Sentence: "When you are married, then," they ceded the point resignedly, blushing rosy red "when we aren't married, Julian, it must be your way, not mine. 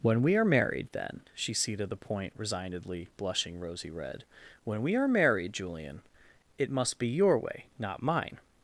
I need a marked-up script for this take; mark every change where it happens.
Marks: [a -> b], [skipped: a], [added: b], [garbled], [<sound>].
"When [you -> we] are married, then," [they -> she] ceded the point resignedly, blushing rosy red "when we [aren't -> are] married, Julian, it must be your way, not mine.